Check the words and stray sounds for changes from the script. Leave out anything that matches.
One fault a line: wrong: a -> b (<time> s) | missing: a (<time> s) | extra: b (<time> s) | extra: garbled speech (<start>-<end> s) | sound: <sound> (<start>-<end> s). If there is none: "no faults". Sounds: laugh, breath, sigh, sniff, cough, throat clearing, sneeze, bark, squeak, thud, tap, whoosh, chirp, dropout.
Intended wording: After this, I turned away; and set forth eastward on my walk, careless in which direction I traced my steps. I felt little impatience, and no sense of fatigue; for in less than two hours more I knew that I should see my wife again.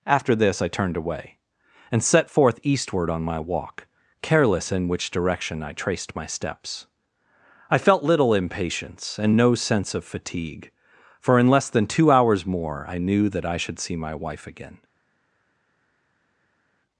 no faults